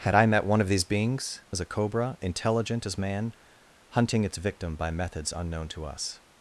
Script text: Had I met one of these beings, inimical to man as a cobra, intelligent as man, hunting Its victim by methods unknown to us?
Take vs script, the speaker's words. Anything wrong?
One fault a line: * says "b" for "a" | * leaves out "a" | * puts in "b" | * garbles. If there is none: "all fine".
* leaves out "inimical to man"